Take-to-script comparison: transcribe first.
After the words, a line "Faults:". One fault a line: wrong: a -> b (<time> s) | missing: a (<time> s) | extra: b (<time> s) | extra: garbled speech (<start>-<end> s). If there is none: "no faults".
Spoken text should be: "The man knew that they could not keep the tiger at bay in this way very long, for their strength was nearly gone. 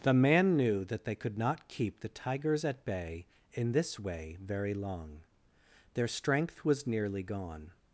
"The man knew that they could not keep the tigers at bay in this way very long, their strength was nearly gone.
Faults:
wrong: tiger -> tigers (2.1 s)
missing: for (5.3 s)